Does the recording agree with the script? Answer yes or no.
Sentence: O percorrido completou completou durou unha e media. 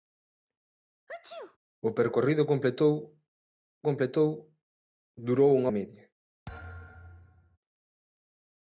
yes